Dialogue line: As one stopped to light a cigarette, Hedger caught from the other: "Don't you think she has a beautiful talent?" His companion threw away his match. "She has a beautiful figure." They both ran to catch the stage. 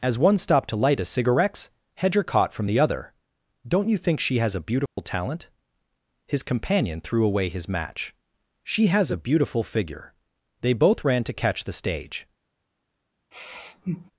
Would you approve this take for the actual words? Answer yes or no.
yes